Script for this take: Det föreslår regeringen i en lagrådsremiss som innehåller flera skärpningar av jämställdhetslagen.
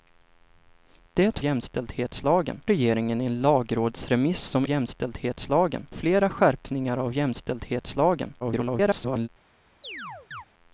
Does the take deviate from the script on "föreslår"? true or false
true